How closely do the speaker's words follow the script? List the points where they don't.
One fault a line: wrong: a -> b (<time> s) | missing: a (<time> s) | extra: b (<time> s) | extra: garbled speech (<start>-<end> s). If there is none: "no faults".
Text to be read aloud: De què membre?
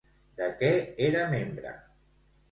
extra: era (1.1 s)